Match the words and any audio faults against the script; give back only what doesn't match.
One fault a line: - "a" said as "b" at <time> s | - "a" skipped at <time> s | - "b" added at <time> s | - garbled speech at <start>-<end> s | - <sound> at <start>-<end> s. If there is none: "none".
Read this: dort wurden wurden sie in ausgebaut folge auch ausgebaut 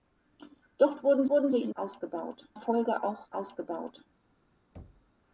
- thud at 4.7-5.1 s